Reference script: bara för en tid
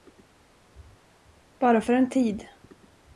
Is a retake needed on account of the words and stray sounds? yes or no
no